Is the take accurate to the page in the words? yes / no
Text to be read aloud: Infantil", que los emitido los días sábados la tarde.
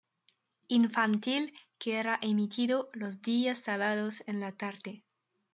no